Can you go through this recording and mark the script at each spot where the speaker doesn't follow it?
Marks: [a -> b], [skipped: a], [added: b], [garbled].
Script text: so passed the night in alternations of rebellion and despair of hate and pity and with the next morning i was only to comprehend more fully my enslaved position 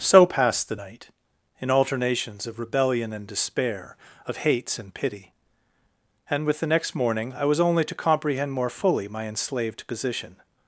so passed the night in alternations of rebellion and despair of [hate -> hates] and pity and with the next morning i was only to comprehend more fully my enslaved position